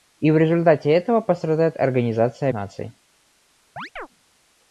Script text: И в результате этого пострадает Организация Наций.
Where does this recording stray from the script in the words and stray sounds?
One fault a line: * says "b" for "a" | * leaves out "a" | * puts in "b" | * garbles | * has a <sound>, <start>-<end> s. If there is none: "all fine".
* has a chirp, 3.8-4.1 s